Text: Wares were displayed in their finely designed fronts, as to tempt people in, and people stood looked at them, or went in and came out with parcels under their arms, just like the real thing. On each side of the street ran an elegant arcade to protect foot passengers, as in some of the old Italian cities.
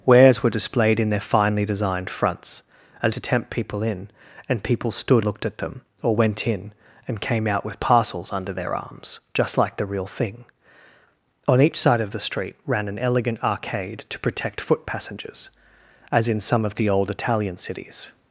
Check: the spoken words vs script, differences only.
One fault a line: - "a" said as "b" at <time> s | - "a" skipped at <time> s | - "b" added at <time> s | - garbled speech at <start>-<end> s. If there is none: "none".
none